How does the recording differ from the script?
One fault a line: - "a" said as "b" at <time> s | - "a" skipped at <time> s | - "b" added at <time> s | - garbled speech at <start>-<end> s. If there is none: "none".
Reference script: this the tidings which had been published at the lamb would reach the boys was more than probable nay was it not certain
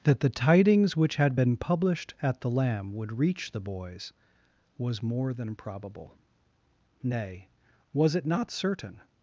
- "this" said as "that" at 0.0 s